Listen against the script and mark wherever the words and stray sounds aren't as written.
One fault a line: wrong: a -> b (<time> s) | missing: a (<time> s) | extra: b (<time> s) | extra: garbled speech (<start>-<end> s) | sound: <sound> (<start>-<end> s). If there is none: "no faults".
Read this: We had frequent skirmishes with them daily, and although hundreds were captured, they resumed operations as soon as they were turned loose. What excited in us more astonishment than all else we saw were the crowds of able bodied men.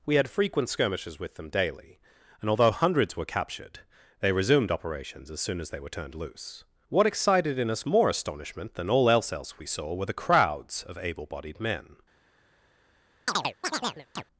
extra: else (9.3 s)
sound: chirp (13.3-14.2 s)